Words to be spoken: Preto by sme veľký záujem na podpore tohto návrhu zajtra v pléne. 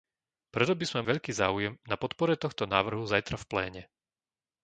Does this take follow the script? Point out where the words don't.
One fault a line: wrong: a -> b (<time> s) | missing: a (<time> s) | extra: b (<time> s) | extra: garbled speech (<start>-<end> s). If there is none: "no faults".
no faults